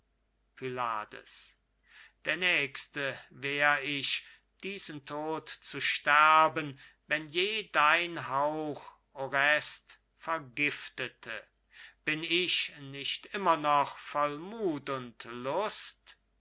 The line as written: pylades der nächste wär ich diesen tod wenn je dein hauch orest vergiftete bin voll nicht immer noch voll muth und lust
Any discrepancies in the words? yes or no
yes